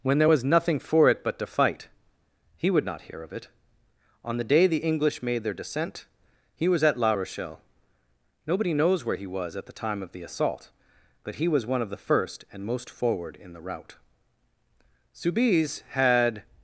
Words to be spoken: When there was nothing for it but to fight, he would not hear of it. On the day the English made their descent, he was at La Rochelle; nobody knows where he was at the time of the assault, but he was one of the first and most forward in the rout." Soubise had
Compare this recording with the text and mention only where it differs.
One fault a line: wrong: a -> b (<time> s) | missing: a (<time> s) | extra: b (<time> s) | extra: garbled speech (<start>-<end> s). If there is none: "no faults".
no faults